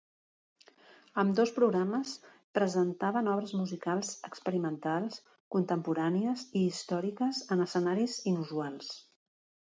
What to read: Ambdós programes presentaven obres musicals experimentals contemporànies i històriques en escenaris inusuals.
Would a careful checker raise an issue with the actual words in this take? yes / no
no